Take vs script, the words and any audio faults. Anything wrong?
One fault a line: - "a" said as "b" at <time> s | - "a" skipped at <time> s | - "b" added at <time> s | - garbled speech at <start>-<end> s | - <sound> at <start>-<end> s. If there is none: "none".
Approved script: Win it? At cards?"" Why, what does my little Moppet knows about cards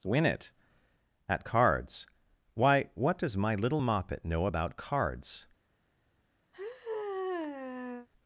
- "knows" said as "know" at 4.2 s
- sigh at 6.5-8.1 s